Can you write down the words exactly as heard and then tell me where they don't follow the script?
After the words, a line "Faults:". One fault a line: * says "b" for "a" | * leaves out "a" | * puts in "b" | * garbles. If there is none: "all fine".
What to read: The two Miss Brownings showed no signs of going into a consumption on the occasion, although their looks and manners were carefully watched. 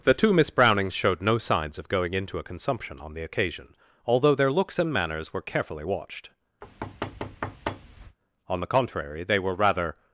The two Miss Brownings showed no signs of going into a consumption on the occasion, although their looks and manners were carefully watched. On the contrary, they were rather
Faults:
* puts in "On the contrary they were rather"